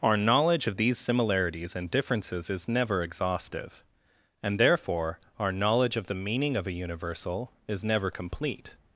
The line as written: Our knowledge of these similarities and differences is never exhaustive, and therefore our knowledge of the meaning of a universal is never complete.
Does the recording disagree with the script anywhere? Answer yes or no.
no